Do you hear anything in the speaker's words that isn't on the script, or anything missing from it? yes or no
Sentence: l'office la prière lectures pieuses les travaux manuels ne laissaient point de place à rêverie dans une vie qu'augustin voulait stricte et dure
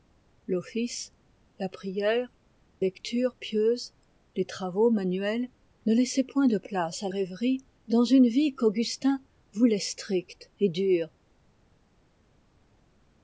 no